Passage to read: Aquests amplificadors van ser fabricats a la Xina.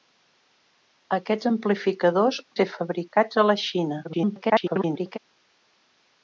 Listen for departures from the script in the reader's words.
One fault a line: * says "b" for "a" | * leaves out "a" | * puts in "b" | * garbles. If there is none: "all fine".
* leaves out "van"
* garbles